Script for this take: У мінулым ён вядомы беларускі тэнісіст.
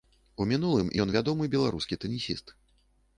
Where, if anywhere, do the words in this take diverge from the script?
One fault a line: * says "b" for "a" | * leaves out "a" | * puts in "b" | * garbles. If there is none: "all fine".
all fine